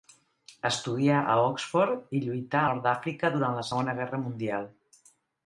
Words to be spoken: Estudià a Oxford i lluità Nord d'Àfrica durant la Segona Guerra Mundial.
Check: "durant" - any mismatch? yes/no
no